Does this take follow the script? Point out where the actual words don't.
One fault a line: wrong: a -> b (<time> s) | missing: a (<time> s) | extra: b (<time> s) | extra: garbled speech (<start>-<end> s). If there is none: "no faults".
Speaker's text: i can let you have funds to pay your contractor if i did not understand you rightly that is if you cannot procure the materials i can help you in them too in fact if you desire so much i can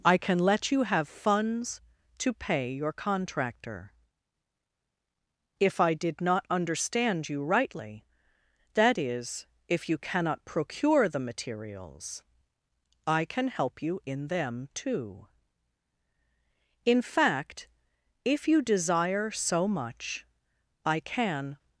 no faults